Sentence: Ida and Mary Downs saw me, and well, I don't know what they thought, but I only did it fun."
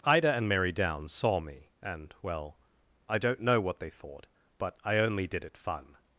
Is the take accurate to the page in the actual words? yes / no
yes